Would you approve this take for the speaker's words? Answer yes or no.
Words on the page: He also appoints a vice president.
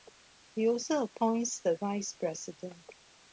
no